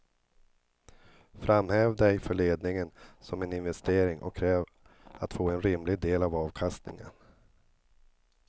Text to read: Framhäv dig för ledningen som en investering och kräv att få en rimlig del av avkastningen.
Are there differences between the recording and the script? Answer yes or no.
no